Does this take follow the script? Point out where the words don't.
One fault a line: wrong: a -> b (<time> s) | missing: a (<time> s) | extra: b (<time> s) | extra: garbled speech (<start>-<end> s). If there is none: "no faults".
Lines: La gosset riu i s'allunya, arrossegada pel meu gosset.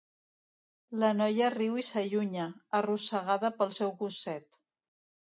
wrong: gosset -> noia (1.2 s)
wrong: meu -> seu (3.8 s)